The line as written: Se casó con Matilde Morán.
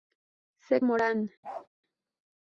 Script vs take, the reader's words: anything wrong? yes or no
yes